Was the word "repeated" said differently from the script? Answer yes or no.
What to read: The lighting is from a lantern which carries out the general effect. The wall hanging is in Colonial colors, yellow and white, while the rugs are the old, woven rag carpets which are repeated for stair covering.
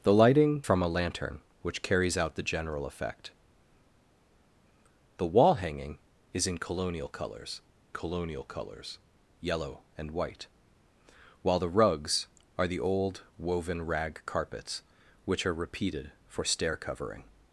no